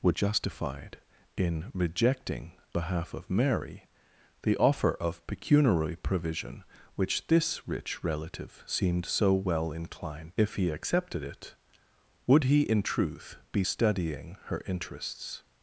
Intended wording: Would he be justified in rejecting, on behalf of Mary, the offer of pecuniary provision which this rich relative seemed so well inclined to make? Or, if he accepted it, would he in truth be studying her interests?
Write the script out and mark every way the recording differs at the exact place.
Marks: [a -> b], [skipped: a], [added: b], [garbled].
Would [skipped: he be] justified in rejecting, [skipped: on] behalf of Mary, the offer of pecuniary provision which this rich relative seemed so well inclined [skipped: to make? Or,] if he accepted it, would he in truth be studying her interests?